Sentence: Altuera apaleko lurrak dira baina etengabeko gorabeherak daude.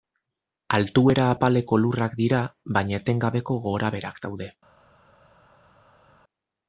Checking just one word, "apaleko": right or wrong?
right